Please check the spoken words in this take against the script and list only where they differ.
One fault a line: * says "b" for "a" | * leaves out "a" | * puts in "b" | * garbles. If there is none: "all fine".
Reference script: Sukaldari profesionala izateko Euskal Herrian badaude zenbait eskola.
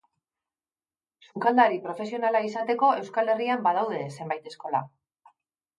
all fine